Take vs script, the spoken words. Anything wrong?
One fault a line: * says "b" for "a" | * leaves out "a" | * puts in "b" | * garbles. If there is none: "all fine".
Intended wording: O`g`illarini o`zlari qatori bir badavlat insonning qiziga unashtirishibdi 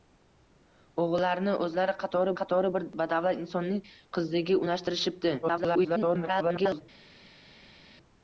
* puts in "qatori"
* garbles